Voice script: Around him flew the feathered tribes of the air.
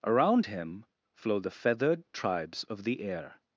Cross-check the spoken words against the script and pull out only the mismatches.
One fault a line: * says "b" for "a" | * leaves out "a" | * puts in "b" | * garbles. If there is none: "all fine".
* says "flow" for "flew"